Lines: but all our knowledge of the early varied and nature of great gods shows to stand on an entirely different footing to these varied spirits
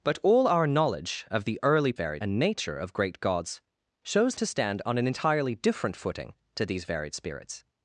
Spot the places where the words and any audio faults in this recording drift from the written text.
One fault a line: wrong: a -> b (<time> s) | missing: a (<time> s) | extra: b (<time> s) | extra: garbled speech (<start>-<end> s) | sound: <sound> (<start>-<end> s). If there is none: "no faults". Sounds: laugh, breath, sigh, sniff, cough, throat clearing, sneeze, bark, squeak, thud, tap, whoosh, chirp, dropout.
no faults